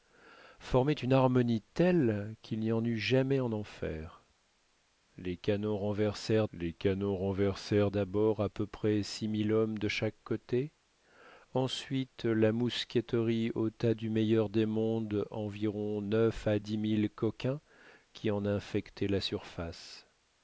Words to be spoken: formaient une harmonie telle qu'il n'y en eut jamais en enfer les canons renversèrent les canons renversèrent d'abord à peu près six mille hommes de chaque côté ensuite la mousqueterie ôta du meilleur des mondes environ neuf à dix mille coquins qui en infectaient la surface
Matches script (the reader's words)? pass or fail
pass